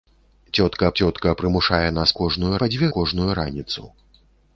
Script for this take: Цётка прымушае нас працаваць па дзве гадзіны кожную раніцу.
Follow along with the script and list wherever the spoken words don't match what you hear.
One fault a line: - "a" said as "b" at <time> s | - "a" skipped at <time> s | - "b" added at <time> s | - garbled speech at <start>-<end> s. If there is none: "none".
- "цётка" added at 1.0 s
- "працаваць" said as "кожную" at 2.2 s
- "гадзіны" skipped at 2.9 s